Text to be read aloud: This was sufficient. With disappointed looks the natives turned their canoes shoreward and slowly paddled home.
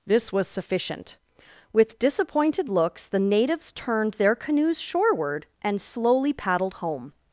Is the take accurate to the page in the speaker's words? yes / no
yes